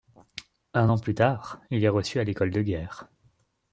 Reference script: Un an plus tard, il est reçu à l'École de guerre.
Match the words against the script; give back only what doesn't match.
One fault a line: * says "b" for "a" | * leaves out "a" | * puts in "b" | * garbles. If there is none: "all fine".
all fine